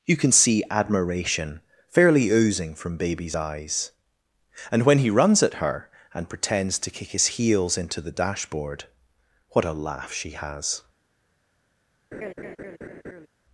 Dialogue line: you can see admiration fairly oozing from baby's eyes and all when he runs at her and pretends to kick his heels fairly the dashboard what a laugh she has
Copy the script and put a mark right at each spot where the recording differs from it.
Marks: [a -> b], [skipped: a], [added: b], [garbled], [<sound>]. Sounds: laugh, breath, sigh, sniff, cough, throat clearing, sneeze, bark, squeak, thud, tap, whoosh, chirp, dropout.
you can see admiration fairly oozing from baby's eyes and [skipped: all] when he runs at her and pretends to kick his heels [fairly -> into] the dashboard what a laugh she has [laugh]